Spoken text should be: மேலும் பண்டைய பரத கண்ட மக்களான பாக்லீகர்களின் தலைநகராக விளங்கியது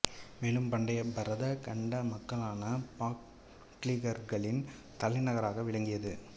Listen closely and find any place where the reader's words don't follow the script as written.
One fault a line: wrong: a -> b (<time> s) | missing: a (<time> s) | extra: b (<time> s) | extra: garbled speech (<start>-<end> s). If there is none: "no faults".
no faults